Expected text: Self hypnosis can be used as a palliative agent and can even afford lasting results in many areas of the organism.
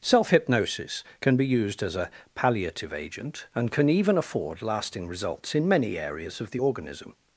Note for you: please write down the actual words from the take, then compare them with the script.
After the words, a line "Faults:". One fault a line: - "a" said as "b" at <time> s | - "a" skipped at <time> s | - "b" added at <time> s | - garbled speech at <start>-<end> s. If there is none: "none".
Self hypnosis can be used as a palliative agent and can even afford lasting results in many areas of the organism.
Faults:
none